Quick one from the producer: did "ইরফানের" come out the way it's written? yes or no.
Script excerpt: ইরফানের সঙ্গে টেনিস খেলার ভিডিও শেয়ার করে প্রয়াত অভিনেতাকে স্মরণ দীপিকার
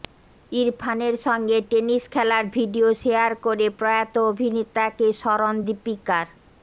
yes